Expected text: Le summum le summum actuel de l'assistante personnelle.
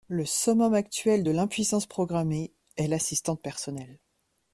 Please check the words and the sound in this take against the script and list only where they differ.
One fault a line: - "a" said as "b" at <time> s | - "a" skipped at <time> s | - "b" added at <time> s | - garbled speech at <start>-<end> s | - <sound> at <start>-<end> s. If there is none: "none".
- "le summum actuel de" said as "actuel de l'impuissance programmée est" at 0.7 s